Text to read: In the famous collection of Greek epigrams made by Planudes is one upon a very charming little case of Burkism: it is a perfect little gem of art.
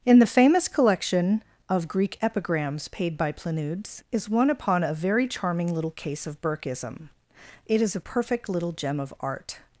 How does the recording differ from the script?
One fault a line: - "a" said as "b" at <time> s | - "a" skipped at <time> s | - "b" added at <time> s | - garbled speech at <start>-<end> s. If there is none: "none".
- "made" said as "paid" at 2.9 s